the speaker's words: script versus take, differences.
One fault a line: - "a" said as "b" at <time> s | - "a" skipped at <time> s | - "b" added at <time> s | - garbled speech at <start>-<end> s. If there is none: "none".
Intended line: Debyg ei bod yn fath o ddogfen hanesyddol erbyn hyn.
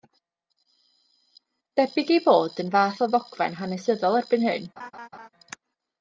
none